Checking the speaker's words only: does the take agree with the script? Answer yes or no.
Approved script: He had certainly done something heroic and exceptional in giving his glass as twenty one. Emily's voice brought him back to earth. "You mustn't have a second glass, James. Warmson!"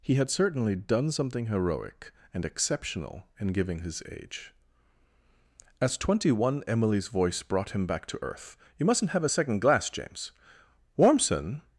no